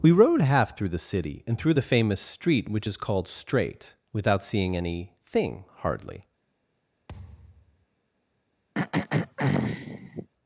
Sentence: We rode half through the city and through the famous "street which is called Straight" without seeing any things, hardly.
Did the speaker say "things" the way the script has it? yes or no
no